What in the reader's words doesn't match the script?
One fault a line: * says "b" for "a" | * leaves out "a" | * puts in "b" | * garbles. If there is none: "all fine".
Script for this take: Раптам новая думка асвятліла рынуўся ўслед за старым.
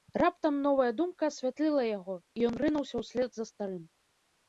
* puts in "яго і ён"